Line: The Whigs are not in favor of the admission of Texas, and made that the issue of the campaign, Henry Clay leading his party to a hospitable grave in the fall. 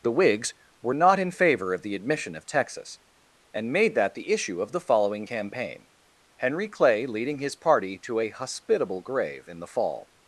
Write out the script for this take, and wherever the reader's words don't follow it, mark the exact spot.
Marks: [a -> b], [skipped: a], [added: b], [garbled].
The Whigs [are -> were] not in favor of the admission of Texas, and made that the issue of the [added: following] campaign, Henry Clay leading his party to a hospitable grave in the fall.